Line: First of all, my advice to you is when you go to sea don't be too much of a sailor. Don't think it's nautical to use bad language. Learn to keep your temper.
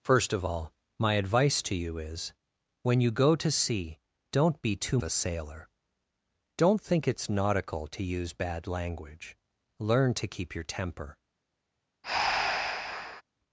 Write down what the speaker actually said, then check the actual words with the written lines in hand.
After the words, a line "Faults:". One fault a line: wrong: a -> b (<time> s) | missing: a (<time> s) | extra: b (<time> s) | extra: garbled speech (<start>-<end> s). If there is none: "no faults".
First of all, my advice to you is when you go to sea don't be too a sailor. Don't think it's nautical to use bad language. Learn to keep your temper.
Faults:
missing: much of (5.0 s)